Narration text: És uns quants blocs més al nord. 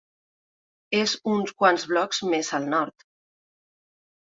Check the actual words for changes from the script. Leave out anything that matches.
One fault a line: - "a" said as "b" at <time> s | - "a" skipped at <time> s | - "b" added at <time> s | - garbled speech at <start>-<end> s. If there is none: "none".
none